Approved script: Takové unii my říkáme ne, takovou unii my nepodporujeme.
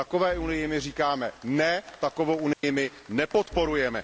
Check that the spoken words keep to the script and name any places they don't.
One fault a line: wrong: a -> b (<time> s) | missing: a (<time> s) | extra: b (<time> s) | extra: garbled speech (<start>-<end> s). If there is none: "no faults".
no faults